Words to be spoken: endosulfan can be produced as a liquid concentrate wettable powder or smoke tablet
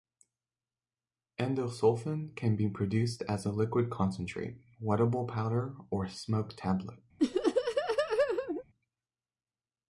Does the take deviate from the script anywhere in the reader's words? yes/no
no